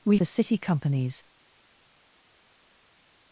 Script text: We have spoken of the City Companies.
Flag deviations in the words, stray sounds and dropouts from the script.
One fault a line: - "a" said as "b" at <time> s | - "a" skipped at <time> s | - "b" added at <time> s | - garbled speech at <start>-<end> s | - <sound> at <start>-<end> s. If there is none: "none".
- "have spoken of" skipped at 0.2 s